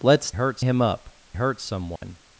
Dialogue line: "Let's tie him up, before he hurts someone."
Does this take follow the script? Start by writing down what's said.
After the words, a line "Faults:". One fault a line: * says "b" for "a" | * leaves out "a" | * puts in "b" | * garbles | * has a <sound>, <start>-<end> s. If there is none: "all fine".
"Let's hurts him up, hurts someone."
Faults:
* says "hurts" for "tie"
* leaves out "before he"
* has a dropout, 2.0-2.0 s